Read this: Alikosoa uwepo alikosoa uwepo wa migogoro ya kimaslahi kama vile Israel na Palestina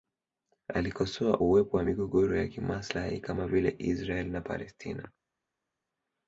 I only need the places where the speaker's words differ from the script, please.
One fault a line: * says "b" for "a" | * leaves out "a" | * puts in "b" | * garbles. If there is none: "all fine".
* leaves out "alikosoa uwepo"